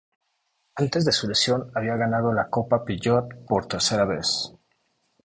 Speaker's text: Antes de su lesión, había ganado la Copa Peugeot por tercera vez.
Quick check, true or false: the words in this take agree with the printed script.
true